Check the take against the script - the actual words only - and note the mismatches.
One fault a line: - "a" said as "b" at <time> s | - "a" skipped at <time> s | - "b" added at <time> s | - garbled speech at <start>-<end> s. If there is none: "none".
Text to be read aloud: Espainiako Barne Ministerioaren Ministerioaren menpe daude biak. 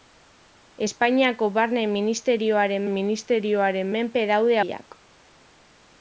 none